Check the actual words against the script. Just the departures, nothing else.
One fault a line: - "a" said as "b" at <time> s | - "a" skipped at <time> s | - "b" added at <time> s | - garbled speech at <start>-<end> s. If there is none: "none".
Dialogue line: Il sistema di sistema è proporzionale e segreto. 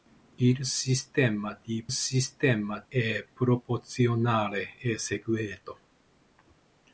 none